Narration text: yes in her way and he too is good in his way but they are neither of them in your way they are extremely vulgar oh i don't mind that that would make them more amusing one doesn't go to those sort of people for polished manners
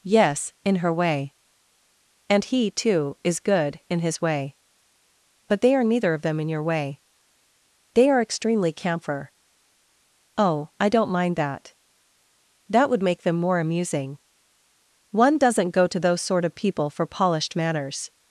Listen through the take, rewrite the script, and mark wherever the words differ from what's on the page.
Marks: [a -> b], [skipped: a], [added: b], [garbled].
yes in her way and he too is good in his way but they are neither of them in your way they are extremely [vulgar -> camphor] oh i don't mind that that would make them more amusing one doesn't go to those sort of people for polished manners